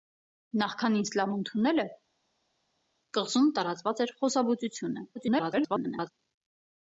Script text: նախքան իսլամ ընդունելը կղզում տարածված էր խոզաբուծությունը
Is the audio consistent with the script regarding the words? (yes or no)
no